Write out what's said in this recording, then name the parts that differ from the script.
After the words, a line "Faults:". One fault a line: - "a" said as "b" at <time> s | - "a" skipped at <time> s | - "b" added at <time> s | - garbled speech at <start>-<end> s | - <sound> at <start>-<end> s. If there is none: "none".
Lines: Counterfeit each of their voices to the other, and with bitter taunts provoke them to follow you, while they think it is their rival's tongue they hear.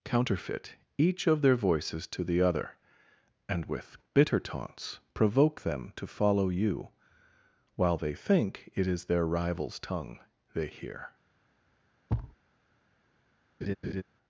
Counterfeit each of their voices to the other, and with bitter taunts provoke them to follow you, while they think it is their rival's tongue they hear.
Faults:
- thud at 12.1-12.4 s
- laugh at 13.6-14.0 s